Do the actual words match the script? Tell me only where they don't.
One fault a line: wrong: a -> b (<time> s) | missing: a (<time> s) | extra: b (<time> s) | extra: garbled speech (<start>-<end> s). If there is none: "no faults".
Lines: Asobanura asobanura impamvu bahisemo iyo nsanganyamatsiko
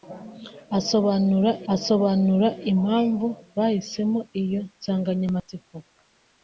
no faults